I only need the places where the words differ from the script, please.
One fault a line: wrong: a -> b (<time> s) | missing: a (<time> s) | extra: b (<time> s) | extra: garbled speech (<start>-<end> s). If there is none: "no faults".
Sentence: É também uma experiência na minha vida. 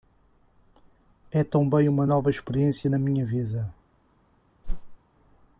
extra: nova (2.1 s)